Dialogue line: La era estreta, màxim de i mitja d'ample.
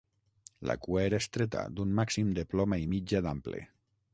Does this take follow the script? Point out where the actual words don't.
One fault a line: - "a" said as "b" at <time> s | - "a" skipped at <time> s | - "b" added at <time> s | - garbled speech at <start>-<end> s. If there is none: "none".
- "cua" added at 0.8 s
- "d'un" added at 1.8 s
- "ploma" added at 2.5 s